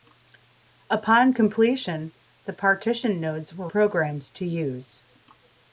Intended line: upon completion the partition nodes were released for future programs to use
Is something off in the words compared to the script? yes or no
yes